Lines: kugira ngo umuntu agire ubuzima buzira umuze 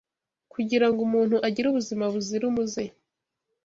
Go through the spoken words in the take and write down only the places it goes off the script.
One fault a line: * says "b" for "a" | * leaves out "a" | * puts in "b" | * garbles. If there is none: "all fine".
all fine